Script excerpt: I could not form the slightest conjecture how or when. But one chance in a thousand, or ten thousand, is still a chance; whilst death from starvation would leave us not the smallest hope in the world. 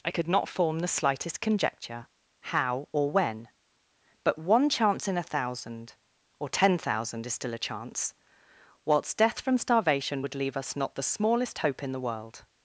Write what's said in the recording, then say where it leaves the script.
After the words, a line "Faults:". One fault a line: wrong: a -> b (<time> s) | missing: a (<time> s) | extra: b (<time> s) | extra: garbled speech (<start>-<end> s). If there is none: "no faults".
I could not form the slightest conjecture how or when. But one chance in a thousand, or ten thousand, is still a chance; whilst death from starvation would leave us not the smallest hope in the world.
Faults:
no faults